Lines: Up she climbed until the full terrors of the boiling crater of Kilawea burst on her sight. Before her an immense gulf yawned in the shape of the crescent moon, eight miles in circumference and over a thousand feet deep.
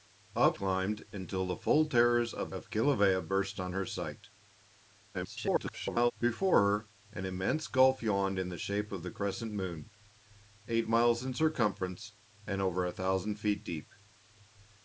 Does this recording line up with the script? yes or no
no